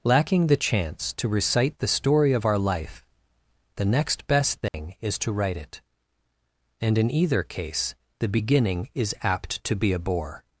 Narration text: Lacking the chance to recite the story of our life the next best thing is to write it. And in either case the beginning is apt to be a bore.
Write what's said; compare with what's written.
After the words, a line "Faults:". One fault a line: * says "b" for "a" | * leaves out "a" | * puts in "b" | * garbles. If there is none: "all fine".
Lacking the chance to recite the story of our life the next best thing is to write it. And in either case the beginning is apt to be a bore.
Faults:
all fine